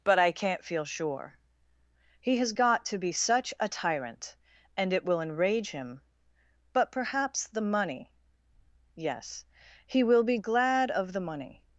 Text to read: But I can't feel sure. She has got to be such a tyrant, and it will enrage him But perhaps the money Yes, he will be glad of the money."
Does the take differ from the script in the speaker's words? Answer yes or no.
yes